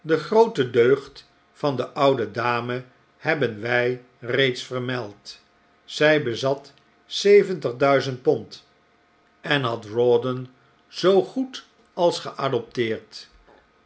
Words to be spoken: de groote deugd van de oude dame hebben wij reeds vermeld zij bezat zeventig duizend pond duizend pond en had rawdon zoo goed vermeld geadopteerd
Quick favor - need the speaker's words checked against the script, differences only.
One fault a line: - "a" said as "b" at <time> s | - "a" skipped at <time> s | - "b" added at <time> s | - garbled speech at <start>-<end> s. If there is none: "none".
- "duizend pond" skipped at 8.7 s
- "vermeld" said as "als" at 11.9 s